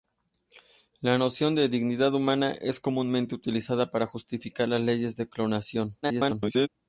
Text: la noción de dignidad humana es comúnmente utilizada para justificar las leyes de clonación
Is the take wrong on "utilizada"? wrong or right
right